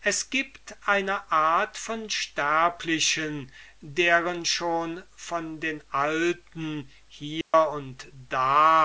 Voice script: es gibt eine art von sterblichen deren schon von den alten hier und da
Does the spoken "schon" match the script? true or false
true